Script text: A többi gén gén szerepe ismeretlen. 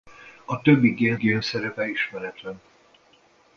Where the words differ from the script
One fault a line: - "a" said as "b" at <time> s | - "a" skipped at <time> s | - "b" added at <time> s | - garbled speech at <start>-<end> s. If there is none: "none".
none